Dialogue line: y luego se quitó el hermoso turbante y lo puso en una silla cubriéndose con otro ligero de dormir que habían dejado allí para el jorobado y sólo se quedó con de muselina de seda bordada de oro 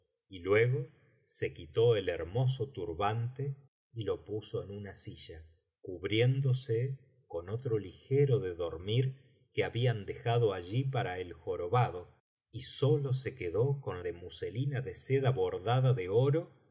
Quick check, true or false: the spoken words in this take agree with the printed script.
true